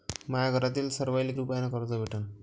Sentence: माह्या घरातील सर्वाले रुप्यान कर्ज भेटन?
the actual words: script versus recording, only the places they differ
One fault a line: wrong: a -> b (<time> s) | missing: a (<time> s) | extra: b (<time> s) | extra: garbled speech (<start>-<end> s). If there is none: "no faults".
no faults